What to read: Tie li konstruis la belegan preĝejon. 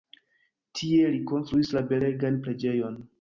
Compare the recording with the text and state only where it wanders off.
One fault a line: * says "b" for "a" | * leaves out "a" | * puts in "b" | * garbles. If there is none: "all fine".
all fine